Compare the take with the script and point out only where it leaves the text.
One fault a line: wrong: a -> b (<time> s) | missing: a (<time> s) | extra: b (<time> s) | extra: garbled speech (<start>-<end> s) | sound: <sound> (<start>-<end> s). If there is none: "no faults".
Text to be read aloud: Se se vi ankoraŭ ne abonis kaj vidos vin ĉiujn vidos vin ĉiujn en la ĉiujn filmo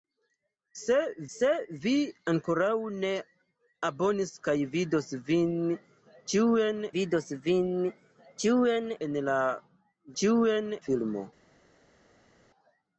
no faults